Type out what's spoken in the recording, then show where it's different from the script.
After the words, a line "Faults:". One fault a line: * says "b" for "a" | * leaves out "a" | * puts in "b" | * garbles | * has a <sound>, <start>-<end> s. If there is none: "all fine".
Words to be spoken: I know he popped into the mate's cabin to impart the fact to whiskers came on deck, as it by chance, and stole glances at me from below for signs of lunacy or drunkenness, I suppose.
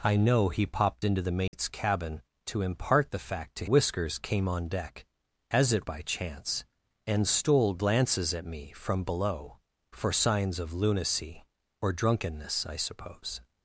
I know he popped into the mate's cabin to impart the fact to whiskers came on deck, as it by chance, and stole glances at me from below for signs of lunacy or drunkenness, I suppose.
Faults:
* has a dropout, 1.5-1.5 s